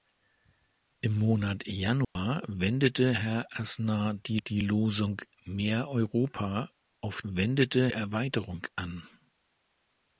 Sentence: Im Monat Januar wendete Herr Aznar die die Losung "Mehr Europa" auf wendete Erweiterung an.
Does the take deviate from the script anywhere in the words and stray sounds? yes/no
yes